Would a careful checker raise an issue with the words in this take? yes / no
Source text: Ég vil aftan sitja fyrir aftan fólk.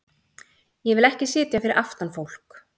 yes